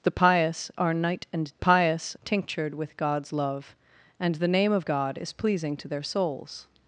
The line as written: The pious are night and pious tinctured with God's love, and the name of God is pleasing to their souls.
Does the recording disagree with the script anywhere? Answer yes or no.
no